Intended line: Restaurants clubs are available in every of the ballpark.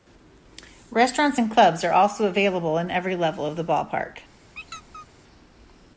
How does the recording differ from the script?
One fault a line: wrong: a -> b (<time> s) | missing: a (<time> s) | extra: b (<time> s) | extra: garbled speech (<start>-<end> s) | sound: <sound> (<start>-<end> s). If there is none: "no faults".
extra: and (1.4 s)
extra: also (1.9 s)
extra: level (3.2 s)
sound: squeak (4.6-5.1 s)